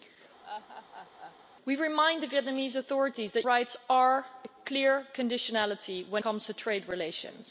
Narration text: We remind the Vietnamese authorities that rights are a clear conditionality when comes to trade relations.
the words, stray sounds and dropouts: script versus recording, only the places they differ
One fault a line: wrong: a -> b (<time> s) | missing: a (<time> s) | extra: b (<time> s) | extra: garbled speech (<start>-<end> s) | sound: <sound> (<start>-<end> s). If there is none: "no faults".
sound: laugh (0.4-1.4 s)